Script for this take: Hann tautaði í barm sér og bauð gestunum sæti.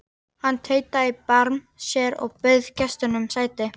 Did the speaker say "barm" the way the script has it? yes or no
yes